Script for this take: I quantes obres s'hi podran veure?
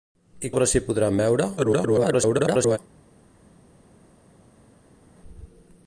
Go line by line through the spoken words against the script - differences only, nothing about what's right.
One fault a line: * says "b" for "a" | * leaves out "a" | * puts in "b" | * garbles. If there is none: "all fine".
* leaves out "quantes"
* garbles